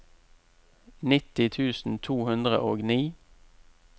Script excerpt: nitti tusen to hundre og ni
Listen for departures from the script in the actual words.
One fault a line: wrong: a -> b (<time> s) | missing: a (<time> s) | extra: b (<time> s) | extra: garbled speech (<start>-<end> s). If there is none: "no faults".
no faults